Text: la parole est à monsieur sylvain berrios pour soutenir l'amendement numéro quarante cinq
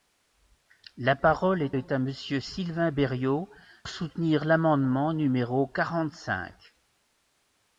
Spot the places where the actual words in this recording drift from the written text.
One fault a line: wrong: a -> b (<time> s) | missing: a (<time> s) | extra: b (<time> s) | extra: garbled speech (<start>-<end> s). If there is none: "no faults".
extra: est (1.7 s)
missing: pour (3.5 s)